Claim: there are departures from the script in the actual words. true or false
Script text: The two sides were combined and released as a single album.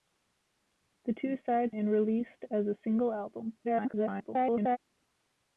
true